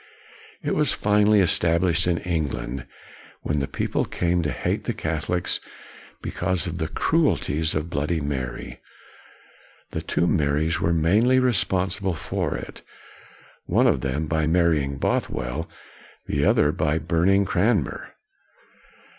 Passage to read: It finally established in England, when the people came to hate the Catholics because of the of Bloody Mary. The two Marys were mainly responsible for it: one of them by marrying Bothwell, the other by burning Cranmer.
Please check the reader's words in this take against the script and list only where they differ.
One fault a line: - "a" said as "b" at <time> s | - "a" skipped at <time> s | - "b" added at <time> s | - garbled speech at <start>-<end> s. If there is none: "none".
- "was" added at 0.7 s
- "cruelties" added at 6.9 s